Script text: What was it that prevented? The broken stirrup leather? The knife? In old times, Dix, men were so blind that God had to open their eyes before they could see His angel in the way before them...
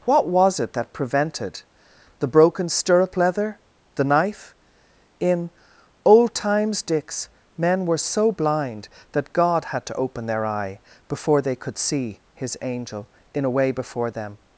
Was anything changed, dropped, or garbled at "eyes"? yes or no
yes